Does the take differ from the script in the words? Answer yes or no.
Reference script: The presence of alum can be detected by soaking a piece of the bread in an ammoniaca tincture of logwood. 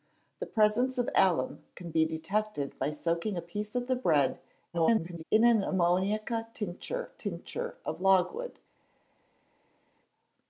yes